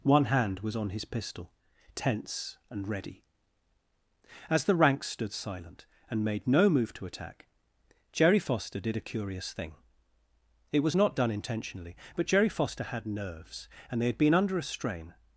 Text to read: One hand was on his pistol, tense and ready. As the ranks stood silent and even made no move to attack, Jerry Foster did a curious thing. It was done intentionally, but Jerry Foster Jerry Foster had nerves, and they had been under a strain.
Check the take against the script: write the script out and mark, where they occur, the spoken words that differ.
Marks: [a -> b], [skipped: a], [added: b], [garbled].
One hand was on his pistol, tense and ready. As the ranks stood silent and [skipped: even] made no move to attack, Jerry Foster did a curious thing. It was [added: not] done intentionally, but Jerry Foster [skipped: Jerry Foster] had nerves, and they had been under a strain.